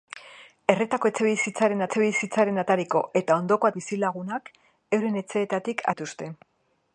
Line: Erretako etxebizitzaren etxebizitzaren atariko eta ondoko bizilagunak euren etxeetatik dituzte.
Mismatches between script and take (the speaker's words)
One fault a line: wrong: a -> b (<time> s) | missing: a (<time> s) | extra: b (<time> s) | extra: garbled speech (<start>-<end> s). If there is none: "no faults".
no faults